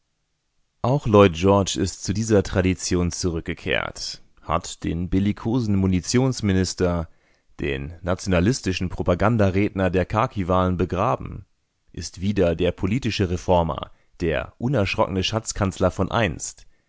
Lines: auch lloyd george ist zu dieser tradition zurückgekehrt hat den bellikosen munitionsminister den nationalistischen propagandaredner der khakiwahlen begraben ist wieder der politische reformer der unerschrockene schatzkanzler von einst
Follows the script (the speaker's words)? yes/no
yes